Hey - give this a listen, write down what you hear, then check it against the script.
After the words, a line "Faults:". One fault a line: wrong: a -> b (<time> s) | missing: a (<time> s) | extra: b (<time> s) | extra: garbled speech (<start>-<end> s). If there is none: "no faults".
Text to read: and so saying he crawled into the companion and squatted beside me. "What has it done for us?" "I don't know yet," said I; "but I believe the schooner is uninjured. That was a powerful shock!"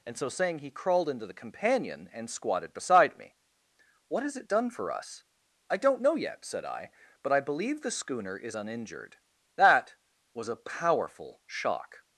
and so saying he crawled into the companion and squatted beside me. "What has it done for us?" "I don't know yet," said I; "but I believe the schooner is uninjured. That was a powerful shock!"
Faults:
no faults